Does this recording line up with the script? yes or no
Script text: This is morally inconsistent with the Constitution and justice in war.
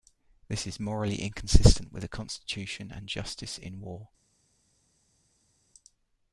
yes